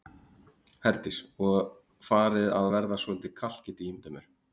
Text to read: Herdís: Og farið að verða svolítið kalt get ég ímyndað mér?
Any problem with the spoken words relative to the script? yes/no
no